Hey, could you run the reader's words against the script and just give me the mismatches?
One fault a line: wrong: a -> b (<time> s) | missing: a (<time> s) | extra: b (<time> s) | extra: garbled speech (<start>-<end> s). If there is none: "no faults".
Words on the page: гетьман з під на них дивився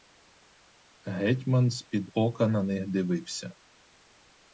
extra: ока (2.1 s)